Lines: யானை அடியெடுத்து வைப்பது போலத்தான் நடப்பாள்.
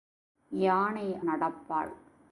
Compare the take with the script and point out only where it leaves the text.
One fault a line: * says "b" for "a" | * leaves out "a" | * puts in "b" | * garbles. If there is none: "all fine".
* leaves out "அடியெடுத்து வைப்பது போலத்தான்"